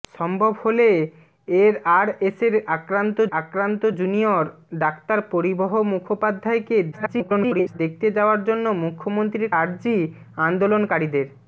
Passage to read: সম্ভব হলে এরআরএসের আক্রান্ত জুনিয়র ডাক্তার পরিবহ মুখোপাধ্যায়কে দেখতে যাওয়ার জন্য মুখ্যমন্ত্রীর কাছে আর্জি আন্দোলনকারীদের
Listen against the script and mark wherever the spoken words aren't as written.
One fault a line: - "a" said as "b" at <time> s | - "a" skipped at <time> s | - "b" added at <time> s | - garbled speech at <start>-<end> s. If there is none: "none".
- "আক্রান্ত" added at 3.3 s
- garbled speech at 6.9-7.8 s
- "কাছে" skipped at 9.5 s